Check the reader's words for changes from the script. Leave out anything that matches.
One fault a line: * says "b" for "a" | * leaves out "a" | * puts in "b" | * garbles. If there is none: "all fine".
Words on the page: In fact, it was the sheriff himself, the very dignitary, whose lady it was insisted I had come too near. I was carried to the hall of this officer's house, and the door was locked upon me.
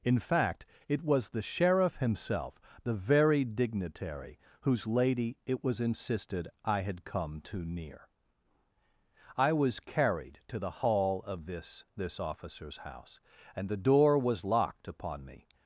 * puts in "this"